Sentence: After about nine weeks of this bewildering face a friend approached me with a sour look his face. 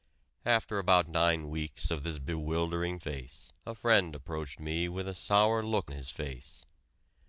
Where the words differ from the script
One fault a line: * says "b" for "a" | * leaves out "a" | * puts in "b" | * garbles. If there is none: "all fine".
all fine